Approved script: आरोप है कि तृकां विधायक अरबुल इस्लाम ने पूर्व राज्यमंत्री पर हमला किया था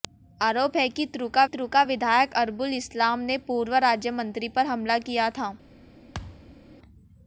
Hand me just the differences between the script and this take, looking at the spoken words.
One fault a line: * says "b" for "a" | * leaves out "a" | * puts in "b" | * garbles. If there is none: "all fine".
* puts in "तृकां"